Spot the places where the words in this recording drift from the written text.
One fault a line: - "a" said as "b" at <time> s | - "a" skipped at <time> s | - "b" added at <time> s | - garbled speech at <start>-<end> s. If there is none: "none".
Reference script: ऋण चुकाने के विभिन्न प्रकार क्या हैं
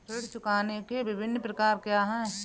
none